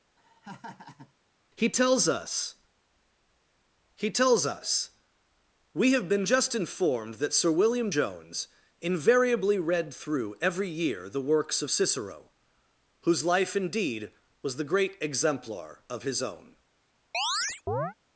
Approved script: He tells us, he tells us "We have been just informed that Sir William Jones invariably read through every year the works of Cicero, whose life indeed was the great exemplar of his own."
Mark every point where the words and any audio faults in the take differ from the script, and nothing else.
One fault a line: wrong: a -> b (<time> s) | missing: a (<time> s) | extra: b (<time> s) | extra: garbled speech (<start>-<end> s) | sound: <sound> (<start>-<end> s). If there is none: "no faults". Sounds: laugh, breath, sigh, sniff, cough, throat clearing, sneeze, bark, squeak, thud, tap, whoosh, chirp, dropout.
sound: laugh (0.2-1.1 s)
sound: chirp (17.1-17.9 s)